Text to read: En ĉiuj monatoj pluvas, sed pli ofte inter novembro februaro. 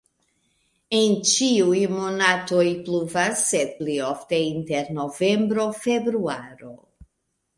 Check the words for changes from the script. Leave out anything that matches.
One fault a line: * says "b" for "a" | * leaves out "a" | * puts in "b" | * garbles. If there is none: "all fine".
all fine